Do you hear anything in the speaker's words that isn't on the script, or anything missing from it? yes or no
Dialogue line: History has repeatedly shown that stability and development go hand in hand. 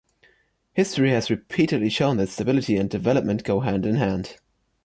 no